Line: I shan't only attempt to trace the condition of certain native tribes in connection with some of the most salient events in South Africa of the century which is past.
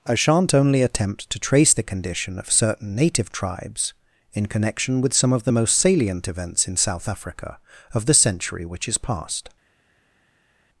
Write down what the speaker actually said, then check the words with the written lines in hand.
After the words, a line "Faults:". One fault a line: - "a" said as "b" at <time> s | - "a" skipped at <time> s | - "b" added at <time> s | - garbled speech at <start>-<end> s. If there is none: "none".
I shan't only attempt to trace the condition of certain native tribes in connection with some of the most salient events in South Africa of the century which is past.
Faults:
none